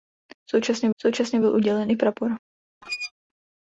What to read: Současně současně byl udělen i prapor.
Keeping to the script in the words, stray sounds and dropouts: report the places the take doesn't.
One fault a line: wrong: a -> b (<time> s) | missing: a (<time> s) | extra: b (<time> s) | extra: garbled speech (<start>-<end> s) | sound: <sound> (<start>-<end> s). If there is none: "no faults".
sound: squeak (2.8-3.1 s)